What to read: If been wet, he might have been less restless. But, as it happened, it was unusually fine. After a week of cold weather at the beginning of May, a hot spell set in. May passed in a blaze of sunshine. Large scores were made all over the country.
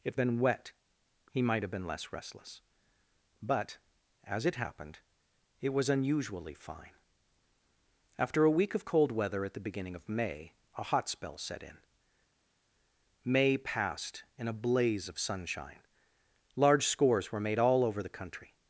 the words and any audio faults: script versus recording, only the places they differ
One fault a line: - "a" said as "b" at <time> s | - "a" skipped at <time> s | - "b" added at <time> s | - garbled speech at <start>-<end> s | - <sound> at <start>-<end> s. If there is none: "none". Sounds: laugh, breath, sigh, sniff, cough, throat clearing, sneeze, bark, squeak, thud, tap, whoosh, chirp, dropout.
none